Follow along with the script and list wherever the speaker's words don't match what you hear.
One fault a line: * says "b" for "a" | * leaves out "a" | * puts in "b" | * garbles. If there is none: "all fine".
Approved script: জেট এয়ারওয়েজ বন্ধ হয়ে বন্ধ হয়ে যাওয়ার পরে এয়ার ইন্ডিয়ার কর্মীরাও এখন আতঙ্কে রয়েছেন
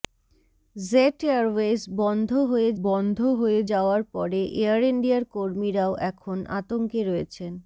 all fine